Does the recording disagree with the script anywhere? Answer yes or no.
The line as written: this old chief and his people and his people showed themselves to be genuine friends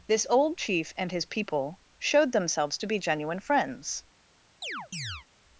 yes